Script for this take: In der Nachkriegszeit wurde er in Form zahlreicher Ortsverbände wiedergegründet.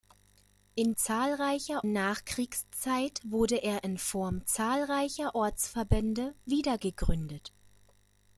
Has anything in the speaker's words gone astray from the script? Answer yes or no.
yes